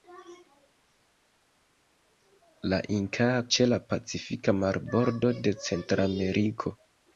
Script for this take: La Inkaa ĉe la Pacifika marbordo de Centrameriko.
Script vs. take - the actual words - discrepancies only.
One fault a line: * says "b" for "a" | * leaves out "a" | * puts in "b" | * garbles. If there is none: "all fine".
all fine